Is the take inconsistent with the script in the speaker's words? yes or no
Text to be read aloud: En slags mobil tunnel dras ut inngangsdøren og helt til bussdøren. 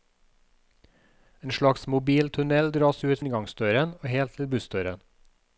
no